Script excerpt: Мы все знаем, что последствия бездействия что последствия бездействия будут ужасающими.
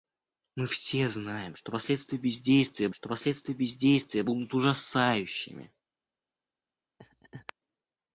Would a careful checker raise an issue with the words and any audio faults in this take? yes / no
yes